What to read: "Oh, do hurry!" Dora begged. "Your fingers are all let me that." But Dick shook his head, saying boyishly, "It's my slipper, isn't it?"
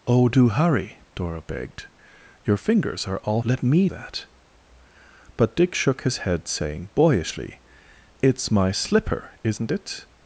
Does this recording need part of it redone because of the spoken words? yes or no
no